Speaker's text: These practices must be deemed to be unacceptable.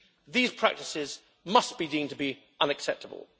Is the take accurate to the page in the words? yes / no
yes